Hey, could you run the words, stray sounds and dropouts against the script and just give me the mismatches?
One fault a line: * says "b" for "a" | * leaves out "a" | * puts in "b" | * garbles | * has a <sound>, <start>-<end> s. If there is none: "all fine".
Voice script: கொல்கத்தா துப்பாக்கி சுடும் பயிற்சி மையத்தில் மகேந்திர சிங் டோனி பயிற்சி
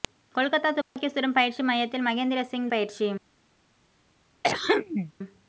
* has a dropout, 0.8-1.0 s
* leaves out "டோனி"
* has a throat clearing, 4.4-5.1 s